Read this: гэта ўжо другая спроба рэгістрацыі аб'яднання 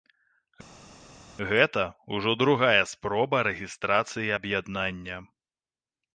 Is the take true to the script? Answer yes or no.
yes